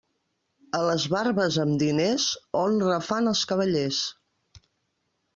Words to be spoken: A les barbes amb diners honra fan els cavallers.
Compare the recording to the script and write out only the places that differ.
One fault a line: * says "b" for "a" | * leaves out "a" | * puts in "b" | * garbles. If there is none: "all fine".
all fine